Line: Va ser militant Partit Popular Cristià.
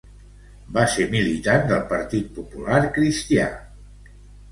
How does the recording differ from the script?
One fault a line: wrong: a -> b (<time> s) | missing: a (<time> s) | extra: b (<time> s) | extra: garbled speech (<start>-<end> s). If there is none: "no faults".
extra: del (1.7 s)